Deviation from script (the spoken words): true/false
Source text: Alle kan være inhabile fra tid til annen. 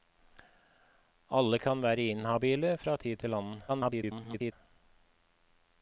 true